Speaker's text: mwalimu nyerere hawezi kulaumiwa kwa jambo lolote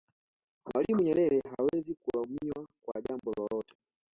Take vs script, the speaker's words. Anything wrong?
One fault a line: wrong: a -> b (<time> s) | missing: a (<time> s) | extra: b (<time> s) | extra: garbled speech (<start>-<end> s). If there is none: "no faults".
no faults